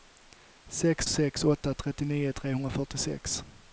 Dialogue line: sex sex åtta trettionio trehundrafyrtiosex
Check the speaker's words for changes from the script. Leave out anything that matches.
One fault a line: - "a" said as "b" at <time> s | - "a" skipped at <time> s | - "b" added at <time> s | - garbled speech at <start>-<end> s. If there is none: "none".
none